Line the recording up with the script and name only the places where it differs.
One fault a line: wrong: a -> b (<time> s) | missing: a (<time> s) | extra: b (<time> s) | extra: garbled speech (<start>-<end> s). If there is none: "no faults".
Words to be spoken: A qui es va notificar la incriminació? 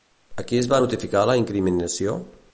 no faults